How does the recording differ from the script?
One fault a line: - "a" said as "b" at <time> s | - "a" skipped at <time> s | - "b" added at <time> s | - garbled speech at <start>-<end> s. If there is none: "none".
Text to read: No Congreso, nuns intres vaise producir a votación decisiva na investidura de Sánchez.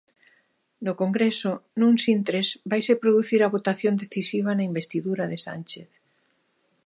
none